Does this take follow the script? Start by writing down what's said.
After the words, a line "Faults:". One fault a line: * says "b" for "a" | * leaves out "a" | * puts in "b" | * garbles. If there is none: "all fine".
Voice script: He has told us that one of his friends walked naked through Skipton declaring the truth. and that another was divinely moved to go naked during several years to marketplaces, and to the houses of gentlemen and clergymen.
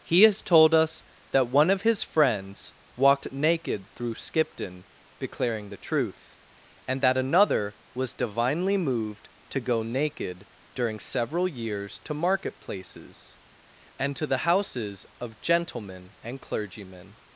He has told us that one of his friends walked naked through Skipton declaring the truth. and that another was divinely moved to go naked during several years to marketplaces, and to the houses of gentlemen and clergymen.
Faults:
all fine